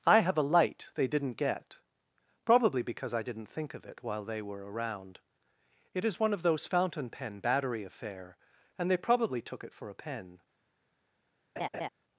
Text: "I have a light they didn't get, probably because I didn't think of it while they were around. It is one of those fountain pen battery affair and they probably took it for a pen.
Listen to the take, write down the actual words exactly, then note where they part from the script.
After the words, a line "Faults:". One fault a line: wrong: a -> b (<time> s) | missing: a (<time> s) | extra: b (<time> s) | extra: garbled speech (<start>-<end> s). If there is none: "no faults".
"I have a light they didn't get, probably because I didn't think of it while they were around. It is one of those fountain pen battery affair and they probably took it for a pen.
Faults:
no faults